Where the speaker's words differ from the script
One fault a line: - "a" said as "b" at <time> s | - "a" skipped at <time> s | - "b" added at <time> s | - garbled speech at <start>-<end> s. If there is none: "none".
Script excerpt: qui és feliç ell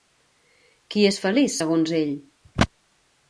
- "segons" added at 1.5 s